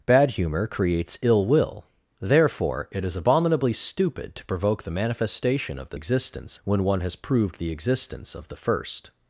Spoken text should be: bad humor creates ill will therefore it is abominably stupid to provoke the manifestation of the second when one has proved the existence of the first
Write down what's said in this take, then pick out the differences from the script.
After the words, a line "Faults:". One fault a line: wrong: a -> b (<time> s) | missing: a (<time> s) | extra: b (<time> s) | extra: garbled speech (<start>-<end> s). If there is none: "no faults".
bad humor creates ill will therefore it is abominably stupid to provoke the manifestation of the existence when one has proved the existence of the first
Faults:
wrong: second -> existence (5.9 s)